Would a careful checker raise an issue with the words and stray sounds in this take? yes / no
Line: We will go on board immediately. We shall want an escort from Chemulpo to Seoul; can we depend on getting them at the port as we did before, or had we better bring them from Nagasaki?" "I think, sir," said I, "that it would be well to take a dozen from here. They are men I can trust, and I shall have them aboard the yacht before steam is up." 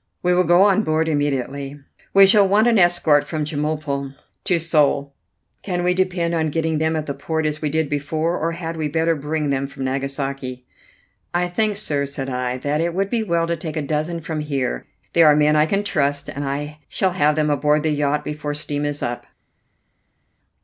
no